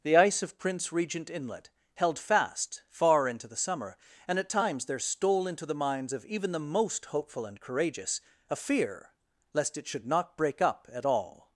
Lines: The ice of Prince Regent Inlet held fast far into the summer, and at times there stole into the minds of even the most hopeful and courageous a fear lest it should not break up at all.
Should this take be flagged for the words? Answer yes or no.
no